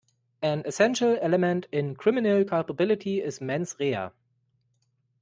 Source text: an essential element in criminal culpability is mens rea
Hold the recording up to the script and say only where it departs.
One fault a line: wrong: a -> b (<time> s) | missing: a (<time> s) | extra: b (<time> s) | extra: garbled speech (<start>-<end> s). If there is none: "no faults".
no faults